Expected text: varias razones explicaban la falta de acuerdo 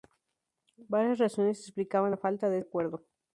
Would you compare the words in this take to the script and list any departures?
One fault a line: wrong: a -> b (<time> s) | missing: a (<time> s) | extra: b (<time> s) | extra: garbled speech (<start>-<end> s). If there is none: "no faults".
no faults